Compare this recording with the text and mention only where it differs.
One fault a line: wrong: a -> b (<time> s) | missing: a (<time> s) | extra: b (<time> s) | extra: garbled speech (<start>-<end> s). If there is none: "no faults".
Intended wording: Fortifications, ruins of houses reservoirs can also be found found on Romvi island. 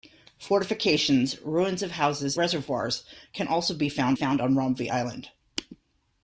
no faults